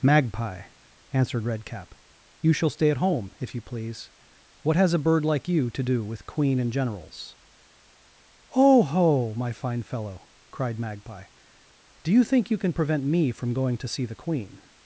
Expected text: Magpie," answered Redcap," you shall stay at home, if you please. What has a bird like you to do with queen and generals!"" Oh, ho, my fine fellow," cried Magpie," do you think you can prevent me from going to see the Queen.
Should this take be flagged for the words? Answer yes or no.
no